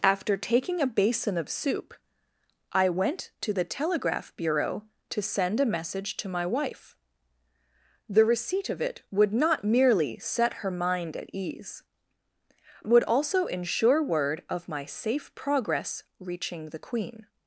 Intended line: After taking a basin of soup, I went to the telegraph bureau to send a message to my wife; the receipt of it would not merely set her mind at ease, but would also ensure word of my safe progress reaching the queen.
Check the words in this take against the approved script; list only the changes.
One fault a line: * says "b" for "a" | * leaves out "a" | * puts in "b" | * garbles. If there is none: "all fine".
* leaves out "but"